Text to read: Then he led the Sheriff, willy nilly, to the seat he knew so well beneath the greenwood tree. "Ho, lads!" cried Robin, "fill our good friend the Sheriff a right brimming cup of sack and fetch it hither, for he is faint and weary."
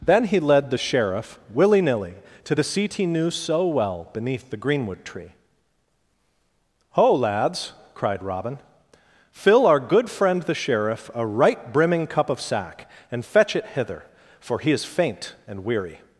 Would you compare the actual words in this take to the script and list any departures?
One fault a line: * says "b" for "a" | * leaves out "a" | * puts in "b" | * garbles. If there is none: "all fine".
all fine